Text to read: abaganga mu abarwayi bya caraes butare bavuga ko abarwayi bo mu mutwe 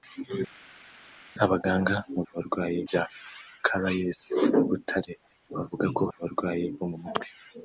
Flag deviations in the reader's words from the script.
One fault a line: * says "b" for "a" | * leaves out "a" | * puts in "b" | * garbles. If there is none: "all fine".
all fine